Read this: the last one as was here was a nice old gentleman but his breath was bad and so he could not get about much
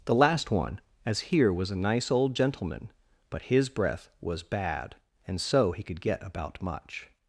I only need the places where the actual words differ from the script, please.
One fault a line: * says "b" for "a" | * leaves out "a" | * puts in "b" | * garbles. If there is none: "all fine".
* leaves out "was"
* leaves out "not"